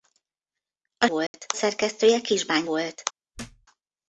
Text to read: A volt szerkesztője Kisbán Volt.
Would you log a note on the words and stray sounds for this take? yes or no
yes